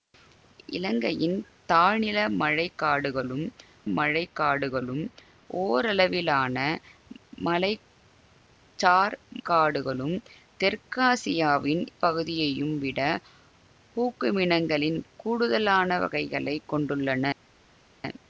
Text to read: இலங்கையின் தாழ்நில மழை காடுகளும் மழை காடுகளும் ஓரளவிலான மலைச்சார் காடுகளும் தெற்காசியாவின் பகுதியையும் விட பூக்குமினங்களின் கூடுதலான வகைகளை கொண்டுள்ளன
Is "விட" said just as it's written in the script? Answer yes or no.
yes